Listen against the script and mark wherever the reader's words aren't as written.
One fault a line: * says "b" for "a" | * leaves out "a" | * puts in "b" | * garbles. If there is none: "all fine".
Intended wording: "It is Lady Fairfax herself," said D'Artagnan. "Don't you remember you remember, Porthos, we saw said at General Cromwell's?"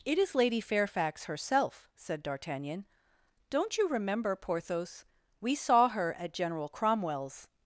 * leaves out "you remember"
* says "her" for "said"